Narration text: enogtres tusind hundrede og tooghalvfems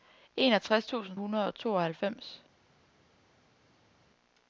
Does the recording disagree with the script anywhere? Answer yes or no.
no